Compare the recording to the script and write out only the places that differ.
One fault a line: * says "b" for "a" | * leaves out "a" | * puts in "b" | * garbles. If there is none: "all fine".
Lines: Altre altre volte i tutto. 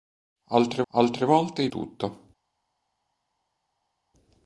all fine